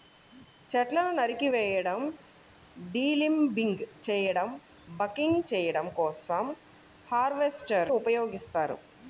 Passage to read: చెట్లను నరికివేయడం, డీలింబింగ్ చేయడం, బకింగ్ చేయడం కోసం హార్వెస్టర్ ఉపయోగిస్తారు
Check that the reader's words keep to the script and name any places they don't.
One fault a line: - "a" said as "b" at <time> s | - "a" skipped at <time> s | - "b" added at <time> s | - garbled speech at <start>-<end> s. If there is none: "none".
none